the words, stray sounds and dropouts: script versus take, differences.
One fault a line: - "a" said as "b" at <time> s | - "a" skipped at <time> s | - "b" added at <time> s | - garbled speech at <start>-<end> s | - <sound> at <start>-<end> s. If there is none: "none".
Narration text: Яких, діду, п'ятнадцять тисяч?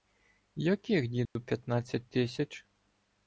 - dropout at 1.3-1.4 s